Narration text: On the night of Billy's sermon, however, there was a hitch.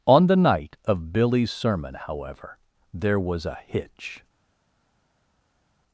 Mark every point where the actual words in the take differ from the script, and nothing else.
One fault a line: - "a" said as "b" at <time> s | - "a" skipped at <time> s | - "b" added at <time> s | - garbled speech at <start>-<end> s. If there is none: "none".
none